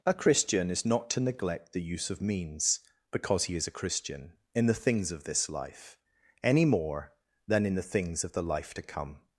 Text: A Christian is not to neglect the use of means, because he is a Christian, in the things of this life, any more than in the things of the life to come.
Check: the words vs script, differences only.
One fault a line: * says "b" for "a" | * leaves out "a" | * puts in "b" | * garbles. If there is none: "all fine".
all fine